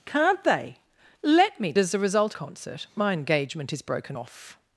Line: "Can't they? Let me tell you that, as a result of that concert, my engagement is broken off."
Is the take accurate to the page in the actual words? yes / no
no